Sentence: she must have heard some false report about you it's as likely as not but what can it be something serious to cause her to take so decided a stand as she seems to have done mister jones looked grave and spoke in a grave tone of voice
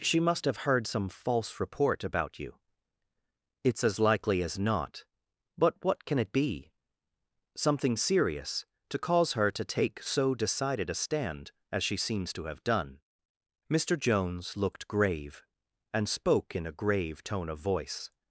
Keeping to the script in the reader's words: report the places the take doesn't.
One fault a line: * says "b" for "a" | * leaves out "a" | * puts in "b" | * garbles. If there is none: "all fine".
all fine